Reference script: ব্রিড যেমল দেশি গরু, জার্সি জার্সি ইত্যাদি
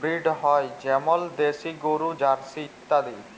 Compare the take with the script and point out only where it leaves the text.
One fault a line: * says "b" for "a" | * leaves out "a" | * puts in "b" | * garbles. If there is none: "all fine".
* puts in "হ্য়"
* leaves out "জার্সি"